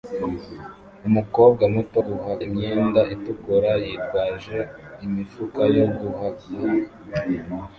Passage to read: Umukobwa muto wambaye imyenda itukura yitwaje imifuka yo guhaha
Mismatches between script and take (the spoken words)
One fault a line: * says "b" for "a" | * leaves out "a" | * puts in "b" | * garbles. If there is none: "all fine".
* says "guhaha" for "wambaye"